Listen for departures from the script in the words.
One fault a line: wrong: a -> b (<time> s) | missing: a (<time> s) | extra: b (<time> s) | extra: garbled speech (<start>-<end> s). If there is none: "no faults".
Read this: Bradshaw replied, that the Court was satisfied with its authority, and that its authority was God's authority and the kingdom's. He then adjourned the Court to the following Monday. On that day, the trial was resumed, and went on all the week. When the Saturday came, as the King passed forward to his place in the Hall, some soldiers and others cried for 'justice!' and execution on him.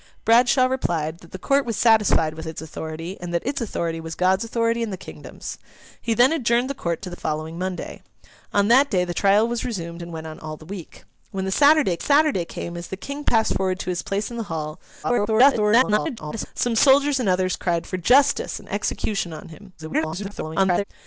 extra: Saturday (12.0 s)
extra: garbled speech (15.0-16.5 s)
extra: garbled speech (19.8-20.8 s)